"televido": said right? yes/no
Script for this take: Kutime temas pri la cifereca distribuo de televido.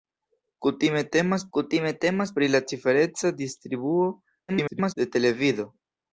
yes